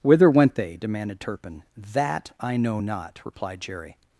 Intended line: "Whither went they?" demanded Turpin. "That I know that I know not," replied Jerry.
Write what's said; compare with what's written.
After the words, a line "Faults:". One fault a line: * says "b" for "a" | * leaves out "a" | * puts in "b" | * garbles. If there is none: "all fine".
"Whither went they?" demanded Turpin. "That I know not," replied Jerry.
Faults:
* leaves out "that I know"